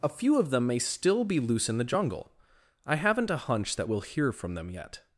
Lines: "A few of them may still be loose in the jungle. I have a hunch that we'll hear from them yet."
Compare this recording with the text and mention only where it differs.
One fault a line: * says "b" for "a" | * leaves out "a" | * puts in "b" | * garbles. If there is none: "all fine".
* says "haven't" for "have"